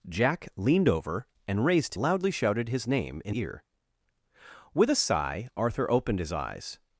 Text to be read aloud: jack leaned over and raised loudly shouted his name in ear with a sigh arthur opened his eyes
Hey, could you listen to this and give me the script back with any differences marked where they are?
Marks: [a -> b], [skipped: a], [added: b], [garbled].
jack leaned over and raised loudly shouted his name in ear with a sigh arthur opened his eyes